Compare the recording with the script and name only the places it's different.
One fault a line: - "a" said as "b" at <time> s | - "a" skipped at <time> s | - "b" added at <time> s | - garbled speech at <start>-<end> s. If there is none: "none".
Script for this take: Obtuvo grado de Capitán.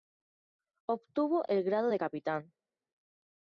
- "el" added at 1.5 s